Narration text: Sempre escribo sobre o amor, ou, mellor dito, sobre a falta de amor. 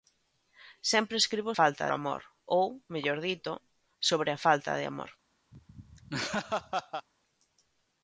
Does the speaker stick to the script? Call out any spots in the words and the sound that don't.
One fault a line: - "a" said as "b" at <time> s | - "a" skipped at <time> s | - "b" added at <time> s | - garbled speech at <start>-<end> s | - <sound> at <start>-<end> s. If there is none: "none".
- "sobre" said as "falta" at 1.6 s
- laugh at 5.5-7.1 s